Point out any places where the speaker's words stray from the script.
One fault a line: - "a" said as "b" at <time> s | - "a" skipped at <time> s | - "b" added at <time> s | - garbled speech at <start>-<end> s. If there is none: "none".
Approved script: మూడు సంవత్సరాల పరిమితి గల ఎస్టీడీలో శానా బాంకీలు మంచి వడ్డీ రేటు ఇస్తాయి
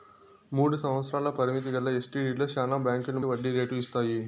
- "మంచి" skipped at 3.2 s